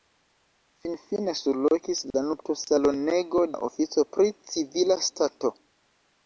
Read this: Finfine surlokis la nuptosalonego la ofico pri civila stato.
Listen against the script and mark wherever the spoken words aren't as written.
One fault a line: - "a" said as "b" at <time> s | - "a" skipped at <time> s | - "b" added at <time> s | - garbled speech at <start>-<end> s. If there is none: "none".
none